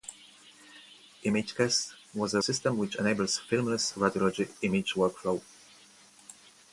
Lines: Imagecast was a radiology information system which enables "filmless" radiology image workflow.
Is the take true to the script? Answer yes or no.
no